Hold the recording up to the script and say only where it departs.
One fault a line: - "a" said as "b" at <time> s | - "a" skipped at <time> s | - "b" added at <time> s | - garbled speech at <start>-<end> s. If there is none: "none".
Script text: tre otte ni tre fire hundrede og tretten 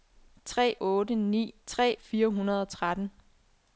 none